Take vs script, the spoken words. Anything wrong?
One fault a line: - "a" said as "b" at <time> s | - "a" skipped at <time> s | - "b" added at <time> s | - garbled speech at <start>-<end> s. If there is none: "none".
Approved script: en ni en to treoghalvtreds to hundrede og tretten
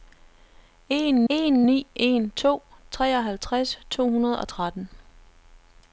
- "en" added at 1.3 s